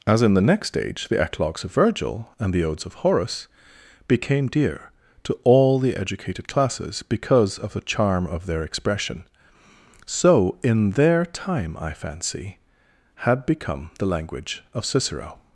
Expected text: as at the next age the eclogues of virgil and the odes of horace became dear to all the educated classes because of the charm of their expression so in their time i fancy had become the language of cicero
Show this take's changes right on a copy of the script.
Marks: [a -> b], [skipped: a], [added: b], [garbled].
as [at -> in] the next age the eclogues of virgil and the odes of horace became dear to all the educated classes because of the charm of their expression so in their time i fancy had become the language of cicero